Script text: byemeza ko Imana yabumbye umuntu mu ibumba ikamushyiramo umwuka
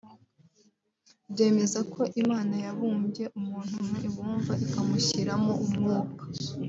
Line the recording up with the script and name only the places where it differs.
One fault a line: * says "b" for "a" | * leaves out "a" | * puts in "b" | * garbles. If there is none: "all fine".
all fine